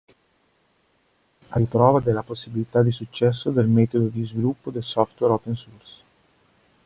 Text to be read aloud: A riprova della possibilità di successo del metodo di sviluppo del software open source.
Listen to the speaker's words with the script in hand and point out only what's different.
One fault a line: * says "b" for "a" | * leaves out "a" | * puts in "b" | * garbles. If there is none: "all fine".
all fine